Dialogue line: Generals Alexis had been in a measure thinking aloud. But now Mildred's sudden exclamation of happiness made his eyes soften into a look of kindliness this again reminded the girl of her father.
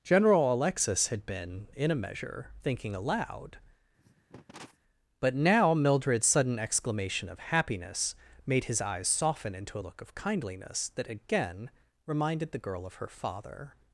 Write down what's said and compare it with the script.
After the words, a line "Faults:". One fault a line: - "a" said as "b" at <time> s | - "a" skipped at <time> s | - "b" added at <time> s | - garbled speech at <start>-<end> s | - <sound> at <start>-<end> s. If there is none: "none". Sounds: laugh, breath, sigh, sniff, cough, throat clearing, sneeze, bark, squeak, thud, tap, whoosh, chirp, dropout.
General Alexis had been in a measure thinking aloud. But now Mildred's sudden exclamation of happiness made his eyes soften into a look of kindliness that again reminded the girl of her father.
Faults:
- "Generals" said as "General" at 0.0 s
- cough at 4.0-4.8 s
- "this" said as "that" at 10.9 s